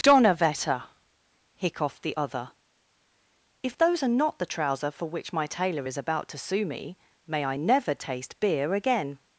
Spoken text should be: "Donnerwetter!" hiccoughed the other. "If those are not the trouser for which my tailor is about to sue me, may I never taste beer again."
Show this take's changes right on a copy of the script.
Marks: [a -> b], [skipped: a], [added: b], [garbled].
"Donnerwetter!" hiccoughed the other. "If those are not the trouser for which my tailor is about to sue me, may I never taste beer again."